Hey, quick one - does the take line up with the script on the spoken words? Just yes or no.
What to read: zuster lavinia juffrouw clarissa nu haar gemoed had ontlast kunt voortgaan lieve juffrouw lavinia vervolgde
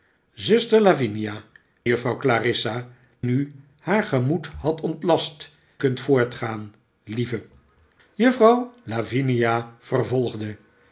yes